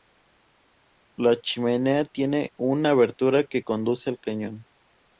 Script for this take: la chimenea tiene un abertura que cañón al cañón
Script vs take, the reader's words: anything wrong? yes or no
yes